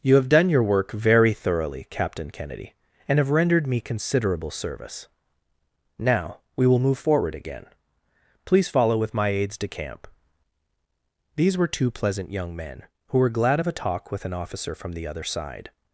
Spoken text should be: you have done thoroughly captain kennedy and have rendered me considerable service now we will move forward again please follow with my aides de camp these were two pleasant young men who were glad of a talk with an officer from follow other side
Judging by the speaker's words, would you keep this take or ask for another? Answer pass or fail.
fail